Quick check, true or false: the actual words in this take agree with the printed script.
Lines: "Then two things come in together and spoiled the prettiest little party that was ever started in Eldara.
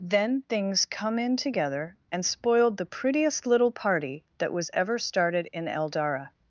false